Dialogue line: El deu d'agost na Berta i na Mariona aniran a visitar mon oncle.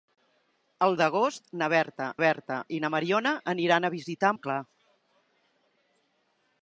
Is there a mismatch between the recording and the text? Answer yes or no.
yes